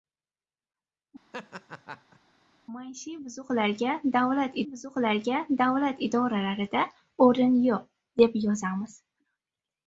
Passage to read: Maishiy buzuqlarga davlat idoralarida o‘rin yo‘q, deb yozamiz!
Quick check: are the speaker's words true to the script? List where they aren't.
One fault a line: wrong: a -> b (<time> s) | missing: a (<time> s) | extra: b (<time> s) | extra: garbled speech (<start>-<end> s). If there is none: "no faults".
extra: buzuqlarga davlat (4.7 s)